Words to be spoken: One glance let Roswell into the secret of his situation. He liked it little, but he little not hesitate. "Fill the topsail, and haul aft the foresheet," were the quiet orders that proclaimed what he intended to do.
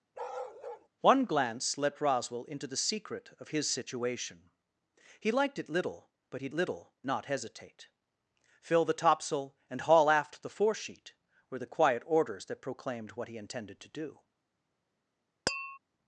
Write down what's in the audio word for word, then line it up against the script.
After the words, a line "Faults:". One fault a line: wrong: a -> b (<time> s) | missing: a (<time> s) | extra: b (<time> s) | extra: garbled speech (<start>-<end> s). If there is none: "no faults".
One glance let Roswell into the secret of his situation. He liked it little, but he little not hesitate. "Fill the topsail, and haul aft the foresheet," were the quiet orders that proclaimed what he intended to do.
Faults:
no faults